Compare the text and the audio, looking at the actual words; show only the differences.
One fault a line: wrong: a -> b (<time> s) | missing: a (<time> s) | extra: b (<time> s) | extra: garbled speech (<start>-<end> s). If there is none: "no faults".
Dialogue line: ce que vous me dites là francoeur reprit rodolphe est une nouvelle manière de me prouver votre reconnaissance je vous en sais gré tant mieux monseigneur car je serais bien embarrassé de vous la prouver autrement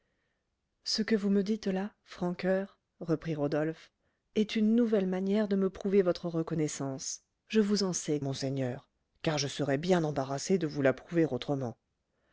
missing: gré tant mieux (8.2 s)